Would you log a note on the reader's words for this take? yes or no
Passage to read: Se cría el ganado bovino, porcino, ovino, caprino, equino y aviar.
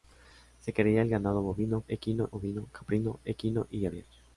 yes